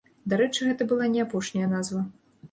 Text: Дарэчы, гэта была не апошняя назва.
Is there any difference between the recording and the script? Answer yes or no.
no